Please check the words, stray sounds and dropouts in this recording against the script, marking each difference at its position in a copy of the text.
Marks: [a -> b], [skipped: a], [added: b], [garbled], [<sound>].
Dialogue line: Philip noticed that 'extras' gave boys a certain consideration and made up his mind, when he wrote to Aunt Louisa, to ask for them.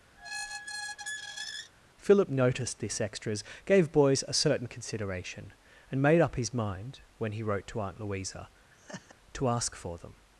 [squeak] Philip noticed [that -> this] 'extras' gave boys a certain consideration and made up his mind, when he wrote to Aunt Louisa, [laugh] to ask for them.